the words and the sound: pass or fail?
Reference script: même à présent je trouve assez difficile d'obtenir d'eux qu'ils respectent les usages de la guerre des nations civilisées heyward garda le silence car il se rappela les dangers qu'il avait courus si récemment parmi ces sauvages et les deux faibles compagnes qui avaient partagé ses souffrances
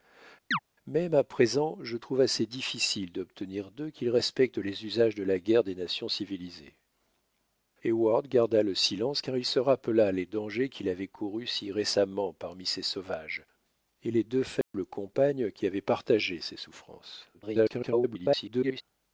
fail